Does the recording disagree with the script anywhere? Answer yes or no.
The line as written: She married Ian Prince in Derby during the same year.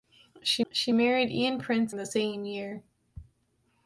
yes